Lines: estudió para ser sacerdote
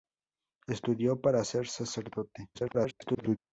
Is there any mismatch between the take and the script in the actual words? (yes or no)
yes